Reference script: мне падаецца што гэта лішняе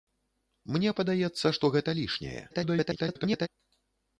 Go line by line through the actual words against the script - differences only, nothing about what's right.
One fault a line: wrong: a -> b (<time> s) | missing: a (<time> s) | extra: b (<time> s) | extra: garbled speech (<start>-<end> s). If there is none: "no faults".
extra: garbled speech (2.5-3.5 s)